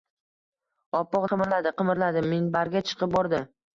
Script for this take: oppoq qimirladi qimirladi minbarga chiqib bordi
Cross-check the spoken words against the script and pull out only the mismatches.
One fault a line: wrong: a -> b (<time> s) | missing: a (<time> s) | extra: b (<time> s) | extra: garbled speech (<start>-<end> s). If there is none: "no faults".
no faults